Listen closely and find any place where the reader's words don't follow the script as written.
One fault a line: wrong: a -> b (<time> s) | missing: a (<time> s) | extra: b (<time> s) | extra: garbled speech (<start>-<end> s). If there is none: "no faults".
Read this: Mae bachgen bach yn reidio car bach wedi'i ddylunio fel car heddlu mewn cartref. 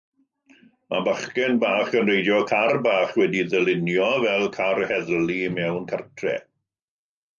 no faults